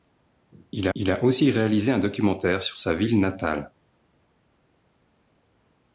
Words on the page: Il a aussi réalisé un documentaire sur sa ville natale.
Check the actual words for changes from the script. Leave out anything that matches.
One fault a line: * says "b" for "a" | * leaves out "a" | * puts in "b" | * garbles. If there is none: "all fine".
* puts in "il"